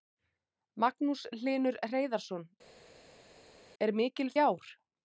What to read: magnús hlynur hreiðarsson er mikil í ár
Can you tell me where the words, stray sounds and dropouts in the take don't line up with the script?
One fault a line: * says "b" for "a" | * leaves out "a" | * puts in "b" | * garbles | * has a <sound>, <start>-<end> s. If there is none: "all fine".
all fine